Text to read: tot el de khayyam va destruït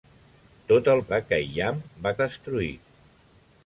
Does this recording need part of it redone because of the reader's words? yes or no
no